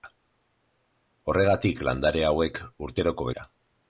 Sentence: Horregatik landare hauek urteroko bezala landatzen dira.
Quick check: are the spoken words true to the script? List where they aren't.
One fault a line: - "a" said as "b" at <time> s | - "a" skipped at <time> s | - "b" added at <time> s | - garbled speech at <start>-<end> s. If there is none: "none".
- "bezala landatzen" skipped at 3.3 s